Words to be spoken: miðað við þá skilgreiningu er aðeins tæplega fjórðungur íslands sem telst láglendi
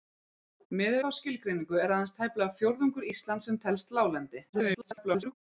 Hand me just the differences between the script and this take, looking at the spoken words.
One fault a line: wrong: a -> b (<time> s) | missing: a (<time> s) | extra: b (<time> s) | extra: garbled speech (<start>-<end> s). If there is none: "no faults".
missing: við (1.0 s)
extra: garbled speech (4.5-5.3 s)